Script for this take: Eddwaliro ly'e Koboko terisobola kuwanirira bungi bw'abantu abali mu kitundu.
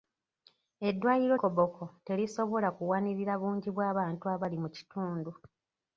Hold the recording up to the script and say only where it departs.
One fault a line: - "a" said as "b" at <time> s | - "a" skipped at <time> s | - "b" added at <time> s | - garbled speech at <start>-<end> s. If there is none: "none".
- "ly'e" skipped at 1.4 s